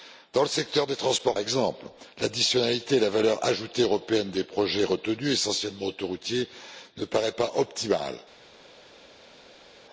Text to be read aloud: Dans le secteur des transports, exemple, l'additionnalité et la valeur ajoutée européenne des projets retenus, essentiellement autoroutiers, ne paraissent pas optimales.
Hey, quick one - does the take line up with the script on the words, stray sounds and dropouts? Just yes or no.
yes